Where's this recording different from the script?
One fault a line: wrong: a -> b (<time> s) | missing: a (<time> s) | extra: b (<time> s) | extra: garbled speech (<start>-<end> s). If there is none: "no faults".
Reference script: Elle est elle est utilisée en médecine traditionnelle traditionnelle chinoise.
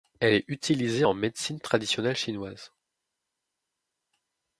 missing: elle est (0.5 s)
missing: traditionnelle (2.1 s)